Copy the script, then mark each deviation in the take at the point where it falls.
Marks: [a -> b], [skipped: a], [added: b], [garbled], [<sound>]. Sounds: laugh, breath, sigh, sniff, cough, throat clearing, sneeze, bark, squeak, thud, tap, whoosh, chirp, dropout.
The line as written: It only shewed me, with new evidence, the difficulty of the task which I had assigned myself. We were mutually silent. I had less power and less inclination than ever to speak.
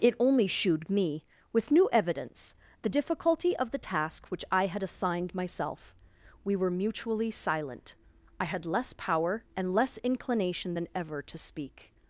It only shewed me, with new evidence, the difficulty of the task which I had assigned myself. We were mutually silent. I had less power and less inclination than ever to speak.